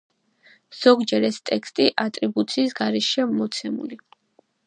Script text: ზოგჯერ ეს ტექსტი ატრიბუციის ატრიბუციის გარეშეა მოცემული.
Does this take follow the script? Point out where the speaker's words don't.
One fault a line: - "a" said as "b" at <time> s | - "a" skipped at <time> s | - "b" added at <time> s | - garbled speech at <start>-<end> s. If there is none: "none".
- "ატრიბუციის" skipped at 2.8 s